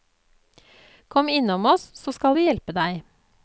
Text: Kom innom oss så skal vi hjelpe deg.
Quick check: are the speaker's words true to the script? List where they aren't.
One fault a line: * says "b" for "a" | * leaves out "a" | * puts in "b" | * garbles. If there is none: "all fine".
all fine